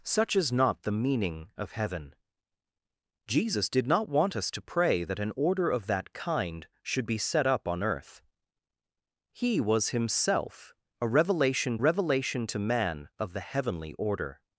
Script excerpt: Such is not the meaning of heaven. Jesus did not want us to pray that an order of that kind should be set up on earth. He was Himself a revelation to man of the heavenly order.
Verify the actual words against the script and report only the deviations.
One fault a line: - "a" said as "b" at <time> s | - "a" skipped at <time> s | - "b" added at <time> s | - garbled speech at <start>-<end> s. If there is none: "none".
- "revelation" added at 11.8 s